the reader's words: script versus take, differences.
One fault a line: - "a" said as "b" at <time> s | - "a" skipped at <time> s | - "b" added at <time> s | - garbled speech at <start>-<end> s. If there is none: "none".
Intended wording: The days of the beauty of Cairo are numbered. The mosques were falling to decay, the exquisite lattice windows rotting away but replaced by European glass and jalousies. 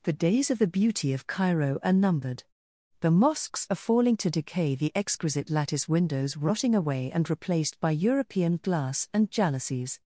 - "were" said as "are" at 3.7 s
- "but" said as "and" at 7.1 s